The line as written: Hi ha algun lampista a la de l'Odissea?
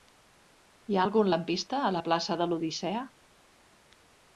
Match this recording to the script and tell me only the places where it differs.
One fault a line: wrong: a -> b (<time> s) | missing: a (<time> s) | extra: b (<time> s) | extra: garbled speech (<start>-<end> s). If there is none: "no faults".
extra: plaça (2.1 s)